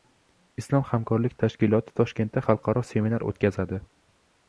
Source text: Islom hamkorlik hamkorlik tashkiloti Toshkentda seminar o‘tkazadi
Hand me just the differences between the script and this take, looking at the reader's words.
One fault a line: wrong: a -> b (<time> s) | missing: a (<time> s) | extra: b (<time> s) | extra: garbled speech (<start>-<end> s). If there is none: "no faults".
missing: hamkorlik (1.4 s)
extra: xalqaro (2.5 s)